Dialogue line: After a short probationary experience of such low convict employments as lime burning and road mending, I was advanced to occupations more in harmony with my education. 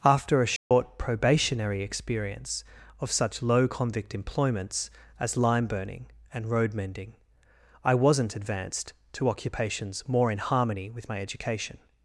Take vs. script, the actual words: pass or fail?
fail